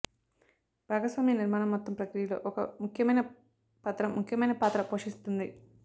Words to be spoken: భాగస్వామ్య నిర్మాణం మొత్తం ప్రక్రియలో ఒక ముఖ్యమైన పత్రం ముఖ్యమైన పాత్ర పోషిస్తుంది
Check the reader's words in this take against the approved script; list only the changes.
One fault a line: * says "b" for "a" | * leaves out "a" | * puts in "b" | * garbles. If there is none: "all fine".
all fine